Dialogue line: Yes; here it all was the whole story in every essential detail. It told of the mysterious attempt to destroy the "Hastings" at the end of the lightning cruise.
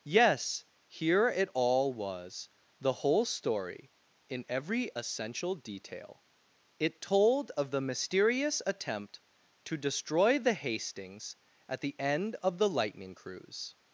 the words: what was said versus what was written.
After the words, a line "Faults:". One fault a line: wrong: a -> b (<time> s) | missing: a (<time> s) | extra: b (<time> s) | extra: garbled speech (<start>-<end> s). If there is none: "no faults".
Yes; here it all was the whole story in every essential detail. It told of the mysterious attempt to destroy the "Hastings" at the end of the lightning cruise.
Faults:
no faults